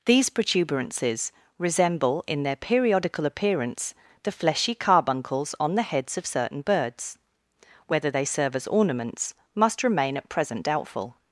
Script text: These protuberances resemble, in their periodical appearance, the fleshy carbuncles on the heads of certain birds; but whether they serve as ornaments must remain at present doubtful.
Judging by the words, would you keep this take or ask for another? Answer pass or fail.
fail